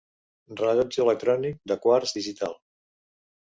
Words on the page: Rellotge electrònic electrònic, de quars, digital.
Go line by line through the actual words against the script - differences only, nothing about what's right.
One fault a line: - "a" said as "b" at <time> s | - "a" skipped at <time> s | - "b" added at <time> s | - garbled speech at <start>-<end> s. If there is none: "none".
- "electrònic" skipped at 1.6 s